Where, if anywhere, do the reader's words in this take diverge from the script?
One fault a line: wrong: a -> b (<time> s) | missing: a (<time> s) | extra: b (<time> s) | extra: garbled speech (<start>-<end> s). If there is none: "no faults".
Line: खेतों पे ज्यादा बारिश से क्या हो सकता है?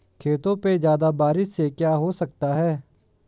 no faults